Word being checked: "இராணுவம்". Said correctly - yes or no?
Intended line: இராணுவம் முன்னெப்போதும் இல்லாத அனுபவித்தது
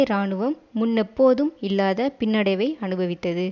yes